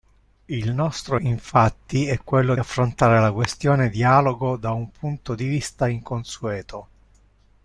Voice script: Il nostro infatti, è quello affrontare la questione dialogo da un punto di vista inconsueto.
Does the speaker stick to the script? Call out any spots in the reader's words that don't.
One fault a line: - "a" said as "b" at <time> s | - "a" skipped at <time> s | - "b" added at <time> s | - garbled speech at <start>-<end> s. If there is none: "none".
none